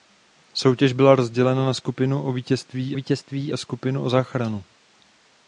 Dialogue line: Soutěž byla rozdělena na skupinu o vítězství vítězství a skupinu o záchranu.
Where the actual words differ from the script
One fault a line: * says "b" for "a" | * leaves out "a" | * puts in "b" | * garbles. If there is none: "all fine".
all fine